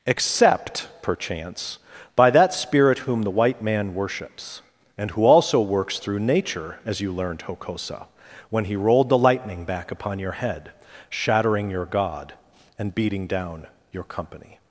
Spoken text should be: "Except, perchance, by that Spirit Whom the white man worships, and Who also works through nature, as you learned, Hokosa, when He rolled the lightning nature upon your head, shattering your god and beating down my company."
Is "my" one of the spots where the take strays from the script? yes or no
yes